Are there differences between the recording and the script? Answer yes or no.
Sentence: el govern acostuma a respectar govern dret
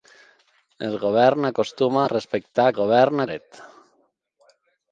no